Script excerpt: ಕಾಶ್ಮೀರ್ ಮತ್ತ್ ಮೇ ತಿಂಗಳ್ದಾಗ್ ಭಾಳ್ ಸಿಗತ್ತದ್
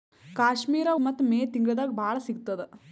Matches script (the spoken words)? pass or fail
pass